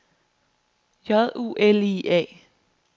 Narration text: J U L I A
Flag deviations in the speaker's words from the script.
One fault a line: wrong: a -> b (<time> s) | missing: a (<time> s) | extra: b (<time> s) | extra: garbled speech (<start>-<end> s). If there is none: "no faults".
no faults